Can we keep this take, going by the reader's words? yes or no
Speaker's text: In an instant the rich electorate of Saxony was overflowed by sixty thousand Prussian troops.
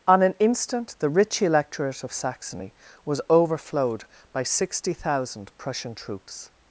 no